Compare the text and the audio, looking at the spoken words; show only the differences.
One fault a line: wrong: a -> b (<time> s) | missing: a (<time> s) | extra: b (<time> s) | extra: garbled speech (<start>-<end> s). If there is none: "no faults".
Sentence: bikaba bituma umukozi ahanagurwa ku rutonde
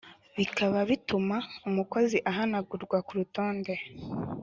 no faults